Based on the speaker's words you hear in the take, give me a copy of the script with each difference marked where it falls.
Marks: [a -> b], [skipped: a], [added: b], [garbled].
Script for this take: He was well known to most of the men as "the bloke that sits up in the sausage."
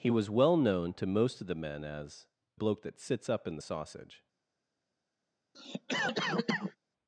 He was well known to most of the men as [skipped: "the] bloke that sits up in the sausage."